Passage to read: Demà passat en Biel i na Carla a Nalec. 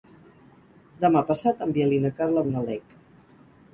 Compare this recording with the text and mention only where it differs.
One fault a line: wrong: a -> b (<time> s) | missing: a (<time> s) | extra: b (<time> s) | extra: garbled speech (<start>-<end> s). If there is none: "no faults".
no faults